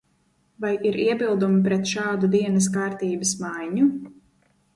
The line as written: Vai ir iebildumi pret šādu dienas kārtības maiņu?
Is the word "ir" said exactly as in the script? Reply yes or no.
yes